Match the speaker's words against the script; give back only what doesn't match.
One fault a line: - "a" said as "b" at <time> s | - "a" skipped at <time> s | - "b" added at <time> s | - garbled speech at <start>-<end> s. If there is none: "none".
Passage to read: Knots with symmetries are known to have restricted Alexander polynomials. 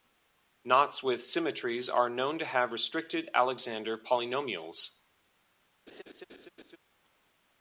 none